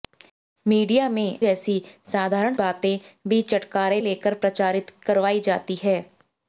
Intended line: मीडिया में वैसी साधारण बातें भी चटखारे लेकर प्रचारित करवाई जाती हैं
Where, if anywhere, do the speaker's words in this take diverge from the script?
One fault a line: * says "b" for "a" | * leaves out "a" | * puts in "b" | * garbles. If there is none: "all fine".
all fine